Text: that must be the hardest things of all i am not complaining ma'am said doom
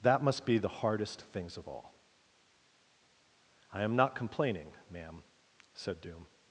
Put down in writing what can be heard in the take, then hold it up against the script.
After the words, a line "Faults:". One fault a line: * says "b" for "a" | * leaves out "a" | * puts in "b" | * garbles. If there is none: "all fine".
that must be the hardest things of all i am not complaining ma'am said doom
Faults:
all fine